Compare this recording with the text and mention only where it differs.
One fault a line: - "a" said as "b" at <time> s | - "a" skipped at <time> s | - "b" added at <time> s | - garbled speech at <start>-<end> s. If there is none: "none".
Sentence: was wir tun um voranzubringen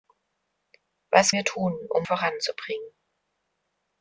none